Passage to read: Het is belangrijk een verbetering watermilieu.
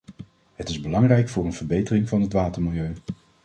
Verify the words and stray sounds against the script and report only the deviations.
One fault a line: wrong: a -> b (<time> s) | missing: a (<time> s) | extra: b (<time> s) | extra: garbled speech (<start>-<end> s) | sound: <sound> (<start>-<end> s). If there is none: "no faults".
extra: voor (1.3 s)
extra: van het (2.1 s)